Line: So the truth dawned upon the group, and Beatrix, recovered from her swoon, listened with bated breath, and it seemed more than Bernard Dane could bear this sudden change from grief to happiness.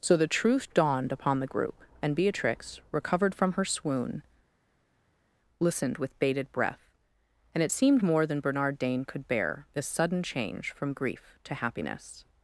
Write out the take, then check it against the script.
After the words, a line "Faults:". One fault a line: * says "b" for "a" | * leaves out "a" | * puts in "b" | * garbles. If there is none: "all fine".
So the truth dawned upon the group, and Beatrix, recovered from her swoon, listened with bated breath, and it seemed more than Bernard Dane could bear this sudden change from grief to happiness.
Faults:
all fine